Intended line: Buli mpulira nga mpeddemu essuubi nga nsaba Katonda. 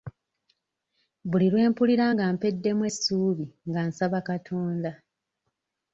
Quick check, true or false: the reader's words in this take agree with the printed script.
false